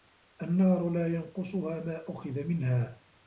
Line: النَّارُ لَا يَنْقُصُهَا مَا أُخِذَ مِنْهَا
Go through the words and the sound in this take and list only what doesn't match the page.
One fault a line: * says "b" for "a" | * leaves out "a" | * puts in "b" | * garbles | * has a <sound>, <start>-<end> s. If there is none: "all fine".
all fine